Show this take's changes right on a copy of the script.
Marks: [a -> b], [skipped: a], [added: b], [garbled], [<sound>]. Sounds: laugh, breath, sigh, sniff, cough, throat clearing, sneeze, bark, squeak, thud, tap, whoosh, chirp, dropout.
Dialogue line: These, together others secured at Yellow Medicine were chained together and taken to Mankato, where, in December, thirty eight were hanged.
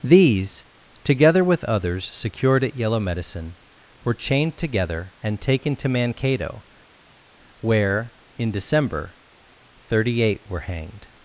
These, together [added: with] others secured at Yellow Medicine were chained together and taken to Mankato, where, in December, thirty eight were hanged.